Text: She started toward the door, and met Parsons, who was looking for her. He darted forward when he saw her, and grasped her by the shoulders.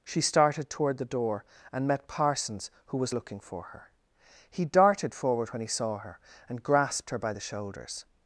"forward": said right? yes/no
yes